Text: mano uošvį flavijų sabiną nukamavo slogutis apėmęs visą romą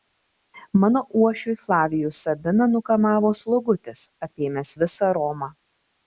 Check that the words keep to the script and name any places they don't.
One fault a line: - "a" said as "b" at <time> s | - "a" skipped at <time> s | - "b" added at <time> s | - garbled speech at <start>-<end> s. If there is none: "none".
none